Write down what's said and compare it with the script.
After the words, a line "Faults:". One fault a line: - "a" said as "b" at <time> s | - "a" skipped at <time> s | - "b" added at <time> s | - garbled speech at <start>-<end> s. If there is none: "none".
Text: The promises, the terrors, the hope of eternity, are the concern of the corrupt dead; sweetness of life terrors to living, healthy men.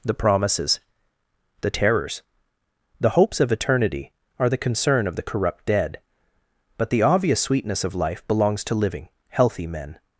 The promises, the terrors, the hopes of eternity, are the concern of the corrupt dead; but the obvious sweetness of life belongs to living, healthy men.
Faults:
- "hope" said as "hopes" at 3.1 s
- "but the obvious" added at 6.8 s
- "terrors" said as "belongs" at 8.3 s